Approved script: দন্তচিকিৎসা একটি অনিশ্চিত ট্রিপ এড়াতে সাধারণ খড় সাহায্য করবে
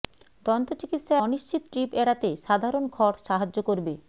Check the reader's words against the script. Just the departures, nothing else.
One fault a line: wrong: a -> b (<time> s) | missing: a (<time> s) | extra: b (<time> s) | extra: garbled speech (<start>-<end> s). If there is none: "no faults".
missing: একটি (1.1 s)